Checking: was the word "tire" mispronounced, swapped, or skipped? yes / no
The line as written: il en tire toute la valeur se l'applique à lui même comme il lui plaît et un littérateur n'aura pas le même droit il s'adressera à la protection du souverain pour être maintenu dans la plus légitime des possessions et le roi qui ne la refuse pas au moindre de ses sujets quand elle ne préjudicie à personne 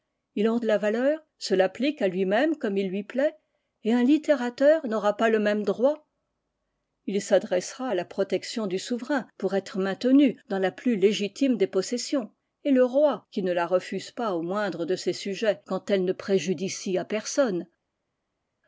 yes